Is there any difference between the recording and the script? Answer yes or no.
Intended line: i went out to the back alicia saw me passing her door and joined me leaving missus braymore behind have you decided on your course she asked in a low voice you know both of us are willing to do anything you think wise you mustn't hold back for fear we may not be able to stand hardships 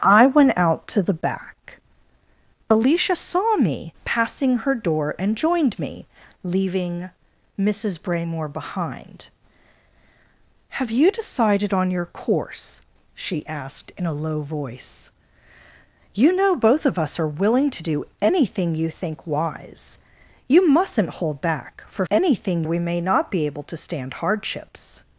yes